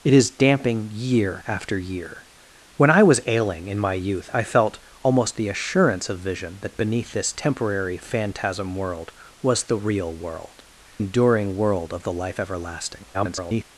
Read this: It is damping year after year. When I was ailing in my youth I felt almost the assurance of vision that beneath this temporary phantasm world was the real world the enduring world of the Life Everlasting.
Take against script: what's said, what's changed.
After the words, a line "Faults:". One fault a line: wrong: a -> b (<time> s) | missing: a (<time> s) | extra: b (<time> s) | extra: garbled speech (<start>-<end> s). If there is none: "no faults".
It is damping year after year. When I was ailing in my youth I felt almost the assurance of vision that beneath this temporary phantasm world was the real world enduring world of the Life Everlasting. [garbled]
Faults:
missing: the (10.6 s)
extra: garbled speech (13.1-13.6 s)